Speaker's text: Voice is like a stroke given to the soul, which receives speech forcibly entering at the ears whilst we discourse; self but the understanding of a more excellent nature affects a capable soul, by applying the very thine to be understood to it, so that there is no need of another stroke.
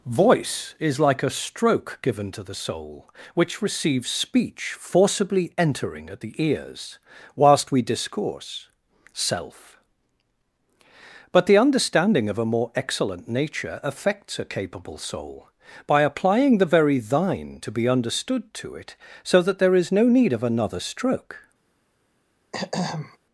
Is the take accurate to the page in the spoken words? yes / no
yes